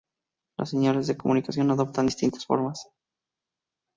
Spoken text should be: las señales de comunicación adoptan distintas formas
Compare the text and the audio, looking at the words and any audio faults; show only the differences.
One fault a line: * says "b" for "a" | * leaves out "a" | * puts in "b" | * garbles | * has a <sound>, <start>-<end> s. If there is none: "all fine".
all fine